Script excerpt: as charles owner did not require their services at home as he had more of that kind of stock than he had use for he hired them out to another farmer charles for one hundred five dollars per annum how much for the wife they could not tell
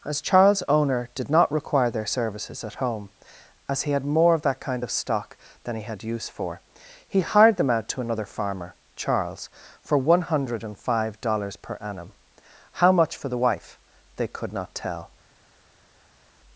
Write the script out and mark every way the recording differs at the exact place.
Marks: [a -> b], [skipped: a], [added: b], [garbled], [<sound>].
as charles owner did not require their services at home as he had more of that kind of stock than he had use for he hired them out to another farmer charles for one hundred five dollars per annum how much for the wife they could not tell